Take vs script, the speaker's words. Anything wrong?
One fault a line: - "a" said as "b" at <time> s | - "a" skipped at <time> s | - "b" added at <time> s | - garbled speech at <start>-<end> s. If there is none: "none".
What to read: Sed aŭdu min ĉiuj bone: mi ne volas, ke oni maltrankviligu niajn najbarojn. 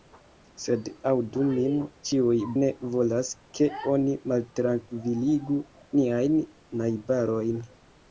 - "bone mi" skipped at 2.4 s